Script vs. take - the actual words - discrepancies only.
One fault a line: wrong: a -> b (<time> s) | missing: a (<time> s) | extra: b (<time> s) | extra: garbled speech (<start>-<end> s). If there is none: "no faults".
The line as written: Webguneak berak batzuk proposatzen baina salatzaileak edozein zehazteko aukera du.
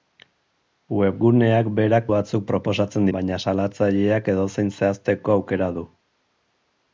no faults